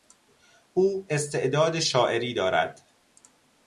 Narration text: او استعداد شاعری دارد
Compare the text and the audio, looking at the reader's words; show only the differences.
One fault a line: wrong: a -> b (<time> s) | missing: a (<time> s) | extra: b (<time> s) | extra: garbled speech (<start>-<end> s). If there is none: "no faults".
no faults